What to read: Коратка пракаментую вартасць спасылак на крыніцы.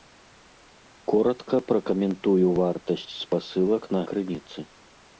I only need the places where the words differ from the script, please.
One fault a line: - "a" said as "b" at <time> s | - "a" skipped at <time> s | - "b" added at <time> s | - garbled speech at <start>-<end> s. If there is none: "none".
none